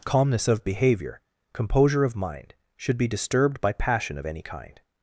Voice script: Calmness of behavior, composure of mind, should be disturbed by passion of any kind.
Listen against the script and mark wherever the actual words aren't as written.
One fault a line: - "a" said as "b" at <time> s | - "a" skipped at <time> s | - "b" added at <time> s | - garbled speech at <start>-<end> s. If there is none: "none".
none